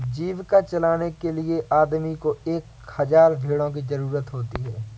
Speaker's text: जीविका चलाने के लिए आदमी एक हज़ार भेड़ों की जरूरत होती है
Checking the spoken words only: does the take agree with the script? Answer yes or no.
no